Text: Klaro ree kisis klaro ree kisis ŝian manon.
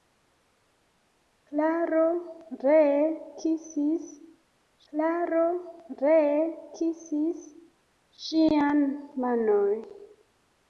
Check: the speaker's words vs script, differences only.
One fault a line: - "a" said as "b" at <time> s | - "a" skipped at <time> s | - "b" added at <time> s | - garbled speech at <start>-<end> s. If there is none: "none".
none